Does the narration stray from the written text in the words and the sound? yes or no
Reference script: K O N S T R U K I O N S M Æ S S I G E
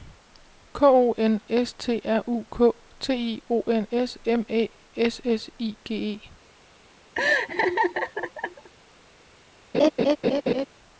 yes